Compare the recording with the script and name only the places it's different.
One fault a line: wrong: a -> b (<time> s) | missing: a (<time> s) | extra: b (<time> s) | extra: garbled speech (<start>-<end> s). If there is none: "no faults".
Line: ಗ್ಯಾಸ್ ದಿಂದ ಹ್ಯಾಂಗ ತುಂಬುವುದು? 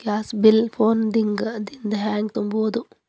extra: ಬಿಲ್ ಫೋನ್ (0.3 s)